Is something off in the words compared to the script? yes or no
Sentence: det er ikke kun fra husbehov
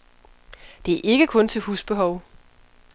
yes